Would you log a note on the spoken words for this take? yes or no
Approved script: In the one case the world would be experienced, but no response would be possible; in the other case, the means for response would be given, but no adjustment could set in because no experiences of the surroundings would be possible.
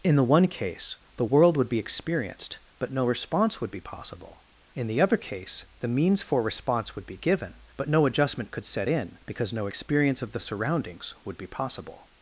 yes